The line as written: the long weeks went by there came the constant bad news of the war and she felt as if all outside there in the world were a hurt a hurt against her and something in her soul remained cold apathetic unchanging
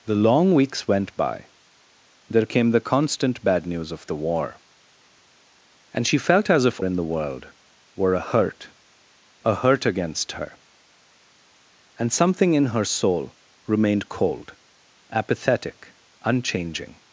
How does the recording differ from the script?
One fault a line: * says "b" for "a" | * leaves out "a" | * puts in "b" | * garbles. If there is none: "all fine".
* leaves out "all outside there"